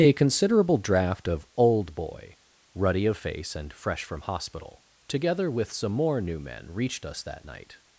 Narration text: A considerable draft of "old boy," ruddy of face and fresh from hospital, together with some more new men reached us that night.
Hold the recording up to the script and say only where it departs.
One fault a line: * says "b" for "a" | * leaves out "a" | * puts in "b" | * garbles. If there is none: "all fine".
all fine